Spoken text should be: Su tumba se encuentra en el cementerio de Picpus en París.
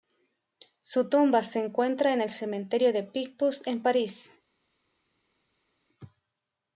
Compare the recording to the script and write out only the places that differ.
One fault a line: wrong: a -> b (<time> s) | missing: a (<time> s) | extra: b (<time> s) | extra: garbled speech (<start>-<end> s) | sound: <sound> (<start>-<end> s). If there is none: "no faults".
no faults